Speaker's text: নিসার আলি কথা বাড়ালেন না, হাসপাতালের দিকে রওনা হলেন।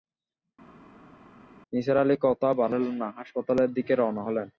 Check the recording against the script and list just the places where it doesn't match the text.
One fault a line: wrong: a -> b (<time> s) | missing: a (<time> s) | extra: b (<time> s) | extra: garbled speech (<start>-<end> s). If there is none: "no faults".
no faults